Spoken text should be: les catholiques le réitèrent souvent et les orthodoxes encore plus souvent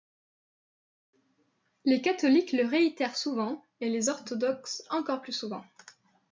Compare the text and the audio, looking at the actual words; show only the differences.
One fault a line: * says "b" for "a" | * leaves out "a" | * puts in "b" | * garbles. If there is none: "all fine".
all fine